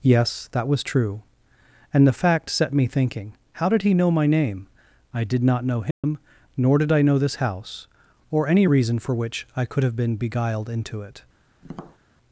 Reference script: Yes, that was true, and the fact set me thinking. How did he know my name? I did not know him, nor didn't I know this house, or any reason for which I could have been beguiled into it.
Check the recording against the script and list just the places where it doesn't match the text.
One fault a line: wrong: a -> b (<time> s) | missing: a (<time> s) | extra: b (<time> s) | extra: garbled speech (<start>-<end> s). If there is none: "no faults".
wrong: didn't -> did (6.8 s)